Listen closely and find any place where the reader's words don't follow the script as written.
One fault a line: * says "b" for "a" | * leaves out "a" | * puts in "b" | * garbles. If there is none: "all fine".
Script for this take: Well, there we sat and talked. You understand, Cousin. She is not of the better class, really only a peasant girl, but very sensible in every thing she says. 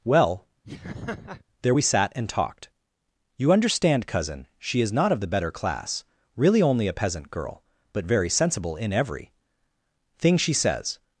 all fine